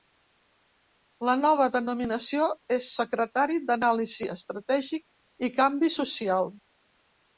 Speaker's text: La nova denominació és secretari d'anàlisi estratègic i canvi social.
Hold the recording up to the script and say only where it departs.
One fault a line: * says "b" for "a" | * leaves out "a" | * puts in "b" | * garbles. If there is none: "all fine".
all fine